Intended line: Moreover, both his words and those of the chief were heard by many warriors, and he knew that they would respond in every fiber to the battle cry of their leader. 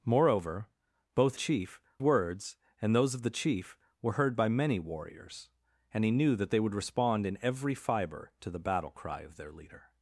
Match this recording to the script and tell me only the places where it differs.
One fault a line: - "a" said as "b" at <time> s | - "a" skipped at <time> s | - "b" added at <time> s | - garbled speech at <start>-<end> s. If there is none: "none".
- "his" said as "chief" at 1.3 s